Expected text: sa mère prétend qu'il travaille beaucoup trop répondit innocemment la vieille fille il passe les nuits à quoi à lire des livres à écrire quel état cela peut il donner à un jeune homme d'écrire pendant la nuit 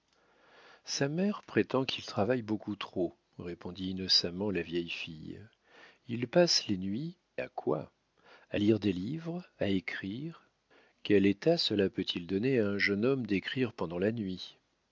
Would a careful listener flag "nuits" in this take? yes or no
no